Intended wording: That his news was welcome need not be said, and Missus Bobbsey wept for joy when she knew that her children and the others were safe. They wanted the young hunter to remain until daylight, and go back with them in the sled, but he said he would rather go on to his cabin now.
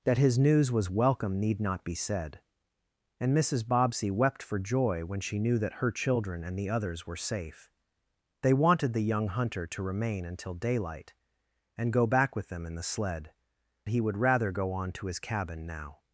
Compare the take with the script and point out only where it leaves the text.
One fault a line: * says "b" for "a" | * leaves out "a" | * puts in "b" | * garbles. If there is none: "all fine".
* leaves out "but he said"